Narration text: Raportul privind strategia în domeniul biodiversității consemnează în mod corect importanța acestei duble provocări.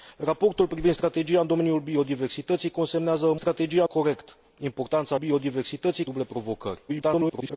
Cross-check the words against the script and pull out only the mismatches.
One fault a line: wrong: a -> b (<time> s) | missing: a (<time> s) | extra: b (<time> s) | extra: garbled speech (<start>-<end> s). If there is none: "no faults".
wrong: mod -> strategia (3.3 s)
wrong: acestei -> biodiversității (5.1 s)
extra: garbled speech (6.9-7.6 s)